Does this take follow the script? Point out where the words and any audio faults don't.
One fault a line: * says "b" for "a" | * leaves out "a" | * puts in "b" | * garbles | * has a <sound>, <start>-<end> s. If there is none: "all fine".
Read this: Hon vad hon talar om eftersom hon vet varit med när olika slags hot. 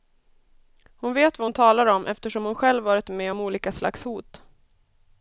* puts in "vet"
* says "själv" for "vet"
* says "om" for "när"